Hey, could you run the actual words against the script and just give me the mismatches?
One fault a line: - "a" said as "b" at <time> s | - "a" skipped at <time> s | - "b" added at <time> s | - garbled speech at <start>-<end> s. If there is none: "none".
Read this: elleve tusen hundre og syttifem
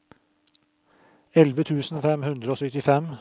- "fem" added at 2.0 s